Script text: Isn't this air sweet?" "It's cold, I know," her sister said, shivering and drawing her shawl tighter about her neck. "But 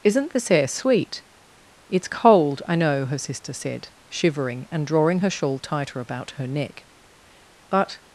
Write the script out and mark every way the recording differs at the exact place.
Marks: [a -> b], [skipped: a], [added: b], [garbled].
Isn't this air sweet?" "It's cold, I know," her sister said, shivering and drawing her shawl tighter about her neck. "But